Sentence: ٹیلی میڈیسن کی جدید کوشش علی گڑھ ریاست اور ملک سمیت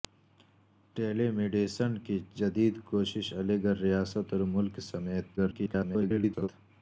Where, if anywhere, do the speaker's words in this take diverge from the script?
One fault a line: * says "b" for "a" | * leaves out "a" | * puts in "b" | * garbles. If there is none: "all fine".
* garbles